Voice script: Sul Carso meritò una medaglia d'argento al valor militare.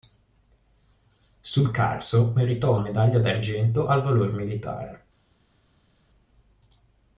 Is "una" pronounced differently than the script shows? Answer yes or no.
yes